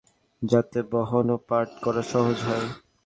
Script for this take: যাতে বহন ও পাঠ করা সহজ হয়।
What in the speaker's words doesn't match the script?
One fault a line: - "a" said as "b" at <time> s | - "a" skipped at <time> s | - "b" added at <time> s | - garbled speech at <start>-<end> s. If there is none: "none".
none